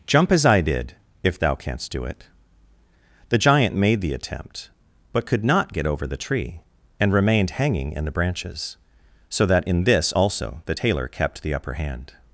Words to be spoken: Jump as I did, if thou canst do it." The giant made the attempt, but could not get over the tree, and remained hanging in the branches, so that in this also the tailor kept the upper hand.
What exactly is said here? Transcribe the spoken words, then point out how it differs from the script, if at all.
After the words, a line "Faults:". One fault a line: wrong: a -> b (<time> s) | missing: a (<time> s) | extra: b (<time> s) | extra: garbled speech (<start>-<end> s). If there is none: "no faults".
Jump as I did, if thou canst do it." The giant made the attempt, but could not get over the tree, and remained hanging in the branches, so that in this also the tailor kept the upper hand.
Faults:
no faults